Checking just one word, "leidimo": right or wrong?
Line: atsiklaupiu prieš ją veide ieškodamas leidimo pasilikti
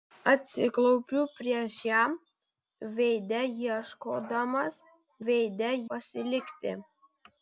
wrong